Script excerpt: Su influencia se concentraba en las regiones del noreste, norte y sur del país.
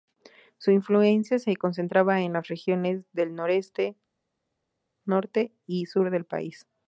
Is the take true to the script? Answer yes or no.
yes